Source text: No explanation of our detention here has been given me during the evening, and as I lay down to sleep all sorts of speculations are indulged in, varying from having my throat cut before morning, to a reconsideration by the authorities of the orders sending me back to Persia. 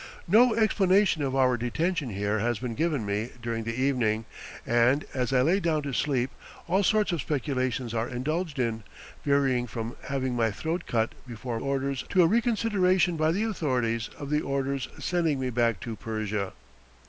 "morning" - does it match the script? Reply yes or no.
no